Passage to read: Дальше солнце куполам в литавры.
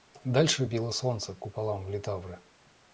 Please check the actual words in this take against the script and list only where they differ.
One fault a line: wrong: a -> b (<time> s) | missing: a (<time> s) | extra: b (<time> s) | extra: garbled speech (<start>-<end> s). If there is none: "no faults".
extra: било (0.6 s)